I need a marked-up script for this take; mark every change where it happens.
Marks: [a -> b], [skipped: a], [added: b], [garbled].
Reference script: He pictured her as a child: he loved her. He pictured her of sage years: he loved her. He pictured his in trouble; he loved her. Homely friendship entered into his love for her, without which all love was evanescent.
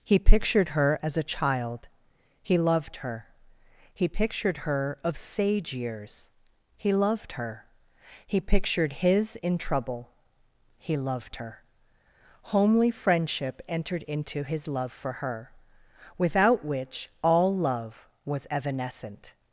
He pictured her as a child: he loved her. He pictured her of sage years: he loved her. He pictured his in trouble; he loved her. Homely friendship entered into his love for her, without which all love was evanescent.